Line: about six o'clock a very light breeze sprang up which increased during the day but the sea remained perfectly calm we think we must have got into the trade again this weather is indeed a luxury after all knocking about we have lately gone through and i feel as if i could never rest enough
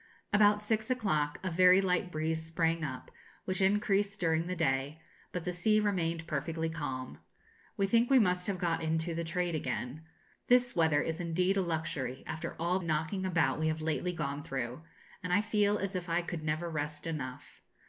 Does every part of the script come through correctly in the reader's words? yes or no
yes